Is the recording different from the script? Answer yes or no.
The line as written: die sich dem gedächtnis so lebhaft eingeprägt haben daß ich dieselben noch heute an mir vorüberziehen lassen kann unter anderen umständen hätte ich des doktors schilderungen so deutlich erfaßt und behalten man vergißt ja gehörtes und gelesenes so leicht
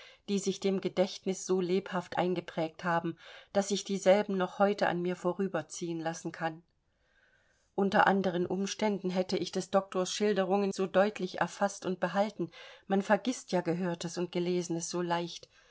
no